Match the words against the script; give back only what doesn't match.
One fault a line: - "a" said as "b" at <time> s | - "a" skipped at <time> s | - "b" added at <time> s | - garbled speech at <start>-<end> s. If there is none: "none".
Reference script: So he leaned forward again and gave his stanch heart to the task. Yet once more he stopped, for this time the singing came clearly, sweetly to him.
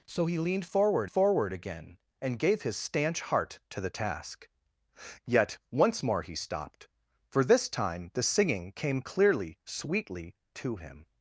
- "forward" added at 1.0 s